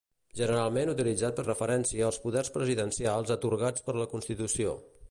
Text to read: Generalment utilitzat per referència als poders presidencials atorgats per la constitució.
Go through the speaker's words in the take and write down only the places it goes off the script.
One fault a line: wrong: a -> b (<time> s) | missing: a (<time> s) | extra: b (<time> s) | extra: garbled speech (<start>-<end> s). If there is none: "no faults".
no faults